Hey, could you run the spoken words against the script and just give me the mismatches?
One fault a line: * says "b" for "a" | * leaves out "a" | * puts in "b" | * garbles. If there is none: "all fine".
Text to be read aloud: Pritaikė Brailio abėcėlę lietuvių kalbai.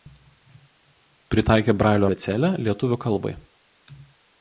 all fine